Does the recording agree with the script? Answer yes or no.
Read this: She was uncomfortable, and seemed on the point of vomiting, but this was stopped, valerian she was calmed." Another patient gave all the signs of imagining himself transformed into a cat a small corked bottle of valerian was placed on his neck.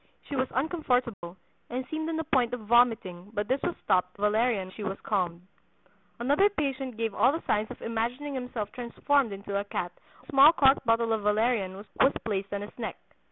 yes